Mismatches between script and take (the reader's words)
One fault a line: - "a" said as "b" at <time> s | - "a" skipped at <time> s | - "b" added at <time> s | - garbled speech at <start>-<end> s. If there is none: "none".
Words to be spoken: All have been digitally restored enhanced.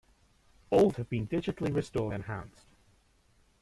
none